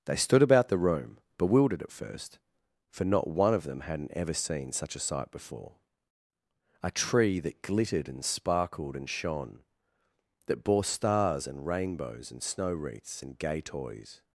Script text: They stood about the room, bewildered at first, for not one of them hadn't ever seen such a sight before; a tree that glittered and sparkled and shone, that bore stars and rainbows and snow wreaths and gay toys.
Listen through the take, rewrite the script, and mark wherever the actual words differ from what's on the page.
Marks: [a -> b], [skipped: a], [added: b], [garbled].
They stood about the room, bewildered at first, for not one of them hadn't ever seen such a sight before; a tree that glittered and sparkled and shone, that bore stars and rainbows and snow wreaths and gay toys.